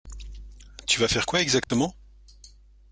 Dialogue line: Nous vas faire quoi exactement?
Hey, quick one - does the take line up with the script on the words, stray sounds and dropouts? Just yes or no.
no